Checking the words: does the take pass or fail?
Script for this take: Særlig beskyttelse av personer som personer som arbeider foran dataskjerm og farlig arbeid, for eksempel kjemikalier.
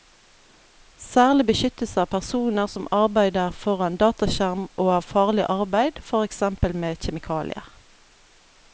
fail